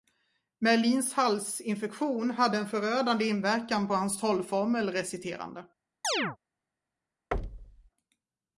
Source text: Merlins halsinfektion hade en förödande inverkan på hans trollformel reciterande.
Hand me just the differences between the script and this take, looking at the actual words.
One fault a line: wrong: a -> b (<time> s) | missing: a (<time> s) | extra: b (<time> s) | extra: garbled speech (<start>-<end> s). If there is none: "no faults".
no faults